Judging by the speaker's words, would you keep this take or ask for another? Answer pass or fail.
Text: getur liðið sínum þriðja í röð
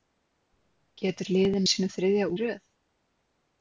pass